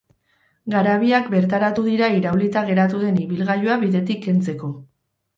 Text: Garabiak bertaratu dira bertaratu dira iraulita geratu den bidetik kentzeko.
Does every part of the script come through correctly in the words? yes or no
no